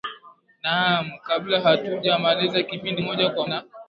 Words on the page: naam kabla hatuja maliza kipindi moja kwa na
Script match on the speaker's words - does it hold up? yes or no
yes